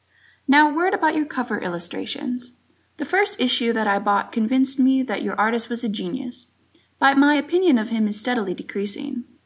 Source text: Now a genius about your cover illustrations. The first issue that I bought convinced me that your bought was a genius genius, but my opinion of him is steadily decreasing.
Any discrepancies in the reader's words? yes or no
yes